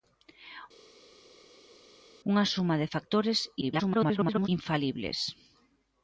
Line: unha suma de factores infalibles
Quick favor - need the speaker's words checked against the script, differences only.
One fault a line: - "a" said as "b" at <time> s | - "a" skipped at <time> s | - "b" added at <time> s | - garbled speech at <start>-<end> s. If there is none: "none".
- garbled speech at 3.6-4.5 s